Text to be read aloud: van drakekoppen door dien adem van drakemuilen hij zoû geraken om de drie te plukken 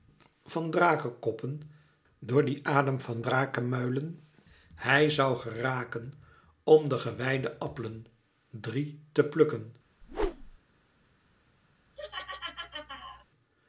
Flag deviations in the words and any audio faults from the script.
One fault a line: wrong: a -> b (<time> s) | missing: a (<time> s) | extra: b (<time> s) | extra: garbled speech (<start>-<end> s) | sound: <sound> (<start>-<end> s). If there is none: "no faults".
extra: gewijde appelen (7.0 s)
sound: whoosh (10.0-10.6 s)
sound: laugh (12.0-13.3 s)